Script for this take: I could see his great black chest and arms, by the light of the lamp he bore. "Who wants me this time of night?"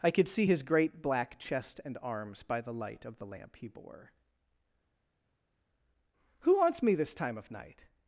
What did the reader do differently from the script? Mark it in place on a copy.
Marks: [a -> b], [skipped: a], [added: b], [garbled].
I could see his great black chest and arms, by the light of the lamp he bore. "Who wants me this time of night?"